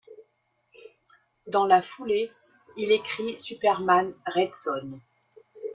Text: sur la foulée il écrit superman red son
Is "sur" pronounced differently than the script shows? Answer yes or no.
yes